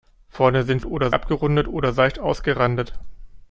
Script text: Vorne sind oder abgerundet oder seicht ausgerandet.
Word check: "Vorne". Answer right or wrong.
right